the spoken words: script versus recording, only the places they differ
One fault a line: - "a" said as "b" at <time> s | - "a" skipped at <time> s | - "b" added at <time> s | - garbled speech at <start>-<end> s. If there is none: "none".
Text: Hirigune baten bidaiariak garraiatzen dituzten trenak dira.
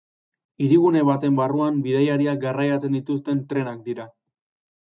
- "barruan" added at 1.4 s